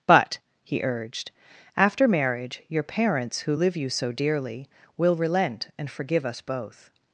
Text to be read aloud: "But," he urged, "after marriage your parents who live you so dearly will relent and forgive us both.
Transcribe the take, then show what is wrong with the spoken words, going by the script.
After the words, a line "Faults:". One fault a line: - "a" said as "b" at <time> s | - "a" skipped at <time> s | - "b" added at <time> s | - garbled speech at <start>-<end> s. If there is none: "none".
"But," he urged, "after marriage your parents who live you so dearly will relent and forgive us both.
Faults:
none